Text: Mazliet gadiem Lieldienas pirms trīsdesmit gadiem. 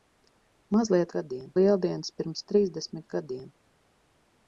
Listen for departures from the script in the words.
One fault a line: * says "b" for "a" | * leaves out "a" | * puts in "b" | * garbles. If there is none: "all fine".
all fine